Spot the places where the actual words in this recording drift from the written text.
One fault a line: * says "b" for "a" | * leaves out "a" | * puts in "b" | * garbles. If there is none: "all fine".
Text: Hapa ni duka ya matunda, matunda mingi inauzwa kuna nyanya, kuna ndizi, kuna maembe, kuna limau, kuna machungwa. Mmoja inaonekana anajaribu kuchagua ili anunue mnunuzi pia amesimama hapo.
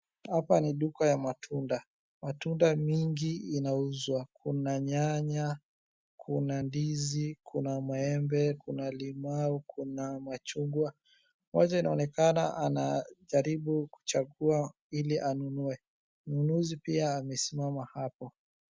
all fine